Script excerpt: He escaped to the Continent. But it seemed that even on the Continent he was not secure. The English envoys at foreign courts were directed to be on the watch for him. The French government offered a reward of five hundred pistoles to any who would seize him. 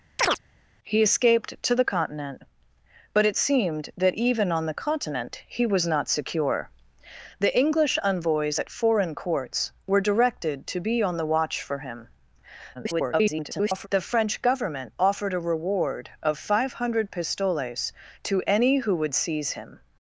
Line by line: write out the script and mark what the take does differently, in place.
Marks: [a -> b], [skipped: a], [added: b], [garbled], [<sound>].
[chirp] He escaped to the Continent. But it seemed that even on the Continent he was not secure. The English envoys at foreign courts were directed to be on the watch for him. [garbled] The French government offered a reward of five hundred pistoles to any who would seize him.